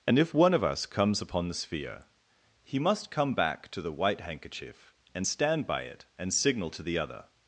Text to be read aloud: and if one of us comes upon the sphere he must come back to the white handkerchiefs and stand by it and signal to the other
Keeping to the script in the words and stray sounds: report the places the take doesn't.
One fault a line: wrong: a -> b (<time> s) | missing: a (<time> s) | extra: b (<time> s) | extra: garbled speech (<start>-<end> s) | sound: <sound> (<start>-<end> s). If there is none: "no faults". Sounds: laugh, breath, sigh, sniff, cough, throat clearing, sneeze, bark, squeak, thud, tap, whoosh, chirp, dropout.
wrong: handkerchiefs -> handkerchief (4.2 s)